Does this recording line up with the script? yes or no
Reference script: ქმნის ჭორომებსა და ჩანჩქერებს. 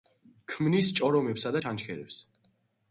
yes